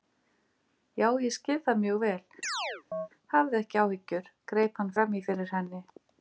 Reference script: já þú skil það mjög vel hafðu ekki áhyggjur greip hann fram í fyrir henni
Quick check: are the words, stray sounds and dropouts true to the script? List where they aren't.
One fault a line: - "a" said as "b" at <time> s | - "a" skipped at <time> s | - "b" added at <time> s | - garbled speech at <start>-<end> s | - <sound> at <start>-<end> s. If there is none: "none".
- "þú" said as "ég" at 1.2 s
- chirp at 2.4-3.1 s